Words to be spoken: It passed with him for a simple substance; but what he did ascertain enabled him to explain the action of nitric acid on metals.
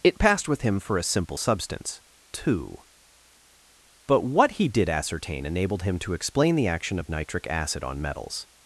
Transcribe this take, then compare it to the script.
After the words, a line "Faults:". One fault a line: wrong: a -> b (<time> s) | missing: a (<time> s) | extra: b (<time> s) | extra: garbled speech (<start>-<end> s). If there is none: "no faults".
It passed with him for a simple substance; two but what he did ascertain enabled him to explain the action of nitric acid on metals.
Faults:
extra: two (2.3 s)